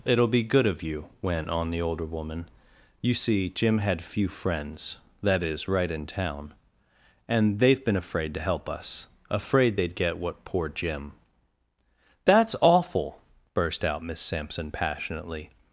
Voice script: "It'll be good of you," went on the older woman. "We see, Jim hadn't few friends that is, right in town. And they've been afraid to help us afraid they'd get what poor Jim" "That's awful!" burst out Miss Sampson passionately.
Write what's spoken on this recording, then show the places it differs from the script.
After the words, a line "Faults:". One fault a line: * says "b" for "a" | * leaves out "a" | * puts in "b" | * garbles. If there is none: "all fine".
"It'll be good of you," went on the older woman. "You see, Jim had few friends that is, right in town. And they've been afraid to help us afraid they'd get what poor Jim" "That's awful!" burst out Miss Sampson passionately.
Faults:
* says "You" for "We"
* says "had" for "hadn't"